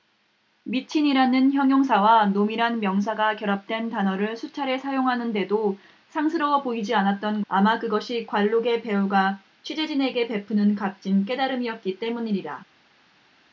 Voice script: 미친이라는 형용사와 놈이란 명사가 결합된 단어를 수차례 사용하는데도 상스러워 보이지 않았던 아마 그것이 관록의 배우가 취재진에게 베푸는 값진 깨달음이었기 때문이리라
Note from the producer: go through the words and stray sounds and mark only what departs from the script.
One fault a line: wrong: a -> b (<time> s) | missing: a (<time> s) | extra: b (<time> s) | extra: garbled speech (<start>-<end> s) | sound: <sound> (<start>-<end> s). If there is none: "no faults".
no faults